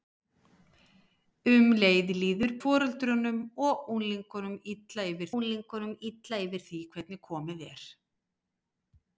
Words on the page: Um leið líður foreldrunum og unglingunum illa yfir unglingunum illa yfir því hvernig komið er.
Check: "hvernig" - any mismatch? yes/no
no